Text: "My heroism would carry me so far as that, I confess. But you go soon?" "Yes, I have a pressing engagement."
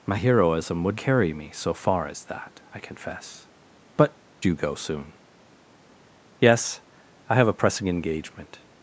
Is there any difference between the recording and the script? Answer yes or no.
no